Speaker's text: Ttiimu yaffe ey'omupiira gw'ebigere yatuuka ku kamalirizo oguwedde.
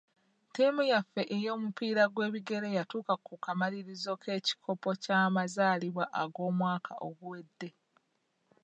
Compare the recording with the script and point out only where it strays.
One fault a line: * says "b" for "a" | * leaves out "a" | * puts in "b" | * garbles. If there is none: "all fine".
* puts in "k'ekikopo ky'amazaalibwa ag'omwaka"